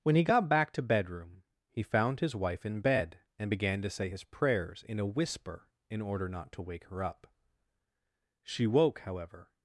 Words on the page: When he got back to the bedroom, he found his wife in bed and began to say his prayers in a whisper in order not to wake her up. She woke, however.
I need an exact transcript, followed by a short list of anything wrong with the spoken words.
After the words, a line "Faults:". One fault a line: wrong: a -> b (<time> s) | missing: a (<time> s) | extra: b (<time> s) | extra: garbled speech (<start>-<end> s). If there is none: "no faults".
When he got back to bedroom, he found his wife in bed and began to say his prayers in a whisper in order not to wake her up. She woke, however.
Faults:
missing: the (0.8 s)